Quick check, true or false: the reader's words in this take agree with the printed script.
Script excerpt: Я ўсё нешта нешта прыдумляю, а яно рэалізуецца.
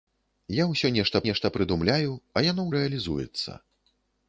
true